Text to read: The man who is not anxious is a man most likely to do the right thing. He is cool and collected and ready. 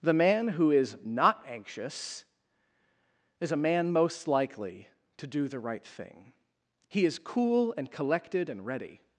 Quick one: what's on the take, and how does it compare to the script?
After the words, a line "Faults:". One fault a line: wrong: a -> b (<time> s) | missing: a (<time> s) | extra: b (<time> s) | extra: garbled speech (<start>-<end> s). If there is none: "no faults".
The man who is not anxious is a man most likely to do the right thing. He is cool and collected and ready.
Faults:
no faults